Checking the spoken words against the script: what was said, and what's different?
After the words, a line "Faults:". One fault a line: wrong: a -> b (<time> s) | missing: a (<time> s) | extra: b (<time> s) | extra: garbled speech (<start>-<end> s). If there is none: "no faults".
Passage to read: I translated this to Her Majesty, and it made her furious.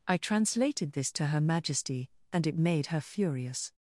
I translated this to Her Majesty, and it made her furious.
Faults:
no faults